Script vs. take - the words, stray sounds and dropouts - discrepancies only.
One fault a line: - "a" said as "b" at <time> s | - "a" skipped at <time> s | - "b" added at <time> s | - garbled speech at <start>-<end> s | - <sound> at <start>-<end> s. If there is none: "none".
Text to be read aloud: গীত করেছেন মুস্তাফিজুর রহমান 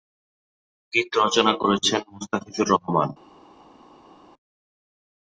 - "রচনা" added at 1.2 s